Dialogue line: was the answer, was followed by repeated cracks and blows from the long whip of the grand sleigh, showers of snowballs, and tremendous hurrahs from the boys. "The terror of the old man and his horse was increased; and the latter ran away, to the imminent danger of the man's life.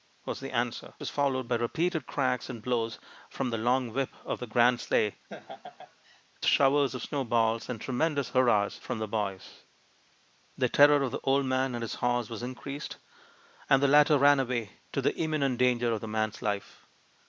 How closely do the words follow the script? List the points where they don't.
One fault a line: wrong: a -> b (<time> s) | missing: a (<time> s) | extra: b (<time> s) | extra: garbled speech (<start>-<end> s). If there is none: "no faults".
no faults